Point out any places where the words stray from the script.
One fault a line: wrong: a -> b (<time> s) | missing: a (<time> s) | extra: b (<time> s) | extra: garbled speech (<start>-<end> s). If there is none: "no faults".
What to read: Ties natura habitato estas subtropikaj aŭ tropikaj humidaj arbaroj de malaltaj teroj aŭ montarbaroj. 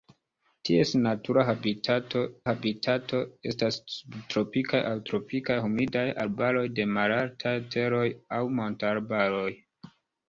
extra: habitato (2.5 s)